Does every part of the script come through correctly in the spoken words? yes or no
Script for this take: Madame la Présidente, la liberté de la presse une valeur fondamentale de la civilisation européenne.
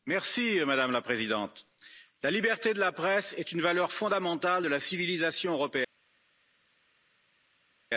no